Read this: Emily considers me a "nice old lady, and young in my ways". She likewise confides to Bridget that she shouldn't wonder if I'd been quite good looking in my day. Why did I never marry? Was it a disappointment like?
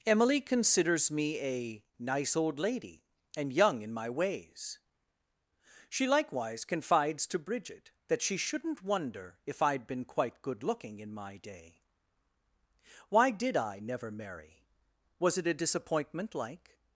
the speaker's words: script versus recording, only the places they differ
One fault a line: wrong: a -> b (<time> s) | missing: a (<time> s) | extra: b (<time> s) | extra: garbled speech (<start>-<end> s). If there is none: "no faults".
no faults